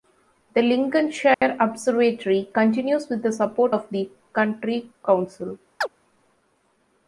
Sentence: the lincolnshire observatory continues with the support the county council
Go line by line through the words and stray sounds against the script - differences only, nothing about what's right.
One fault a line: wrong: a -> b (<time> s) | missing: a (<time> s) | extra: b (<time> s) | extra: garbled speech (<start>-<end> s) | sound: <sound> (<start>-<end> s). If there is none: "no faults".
sound: dropout (1.3-1.4 s)
extra: of (3.7 s)
sound: chirp (5.8-5.9 s)